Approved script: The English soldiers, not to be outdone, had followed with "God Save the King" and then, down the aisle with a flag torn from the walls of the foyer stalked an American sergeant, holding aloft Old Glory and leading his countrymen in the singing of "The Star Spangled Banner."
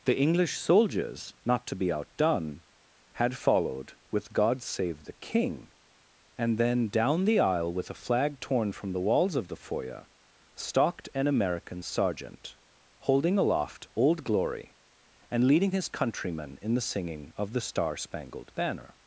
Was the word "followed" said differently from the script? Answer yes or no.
no